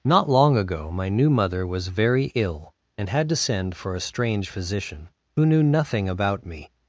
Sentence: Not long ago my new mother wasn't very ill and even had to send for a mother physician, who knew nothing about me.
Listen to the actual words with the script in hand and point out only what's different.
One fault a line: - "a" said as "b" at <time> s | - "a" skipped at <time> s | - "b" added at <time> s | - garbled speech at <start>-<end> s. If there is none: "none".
- "wasn't" said as "was" at 1.7 s
- "even" skipped at 3.1 s
- "mother" said as "strange" at 4.0 s